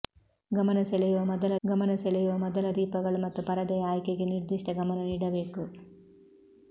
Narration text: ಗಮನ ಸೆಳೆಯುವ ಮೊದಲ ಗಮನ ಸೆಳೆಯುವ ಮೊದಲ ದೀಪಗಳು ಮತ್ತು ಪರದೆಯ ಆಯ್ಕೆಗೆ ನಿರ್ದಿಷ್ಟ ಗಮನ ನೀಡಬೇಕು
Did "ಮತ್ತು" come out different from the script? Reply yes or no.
no